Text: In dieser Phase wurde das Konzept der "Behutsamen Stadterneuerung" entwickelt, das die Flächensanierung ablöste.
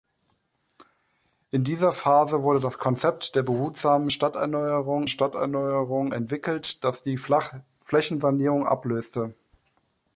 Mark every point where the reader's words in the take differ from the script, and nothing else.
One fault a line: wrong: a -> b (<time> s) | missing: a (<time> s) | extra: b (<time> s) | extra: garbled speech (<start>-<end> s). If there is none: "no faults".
extra: Stadterneuerung (5.1 s)